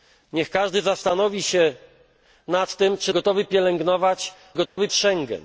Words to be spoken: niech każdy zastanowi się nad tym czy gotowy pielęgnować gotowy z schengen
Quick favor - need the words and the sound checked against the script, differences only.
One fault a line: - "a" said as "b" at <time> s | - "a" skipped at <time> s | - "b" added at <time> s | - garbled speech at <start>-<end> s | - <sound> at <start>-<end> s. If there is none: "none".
- dropout at 4.7-4.8 s